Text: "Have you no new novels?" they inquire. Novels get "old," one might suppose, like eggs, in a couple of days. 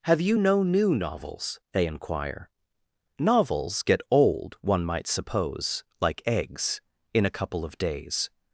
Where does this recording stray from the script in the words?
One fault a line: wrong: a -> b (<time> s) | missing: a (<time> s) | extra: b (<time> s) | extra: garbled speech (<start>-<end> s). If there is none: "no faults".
no faults